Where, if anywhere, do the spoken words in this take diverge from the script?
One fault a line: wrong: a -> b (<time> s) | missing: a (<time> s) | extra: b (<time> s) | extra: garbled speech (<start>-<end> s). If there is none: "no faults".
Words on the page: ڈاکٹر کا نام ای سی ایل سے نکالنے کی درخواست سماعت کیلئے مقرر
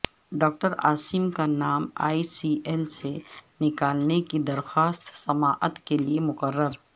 extra: عاصم (0.9 s)